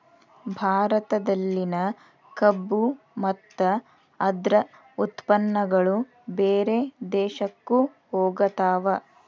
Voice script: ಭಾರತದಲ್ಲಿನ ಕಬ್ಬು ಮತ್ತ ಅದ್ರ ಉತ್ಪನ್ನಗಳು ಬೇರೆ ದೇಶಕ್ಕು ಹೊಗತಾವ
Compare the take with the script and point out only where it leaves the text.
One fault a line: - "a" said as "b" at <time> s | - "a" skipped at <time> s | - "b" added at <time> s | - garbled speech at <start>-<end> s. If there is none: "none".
none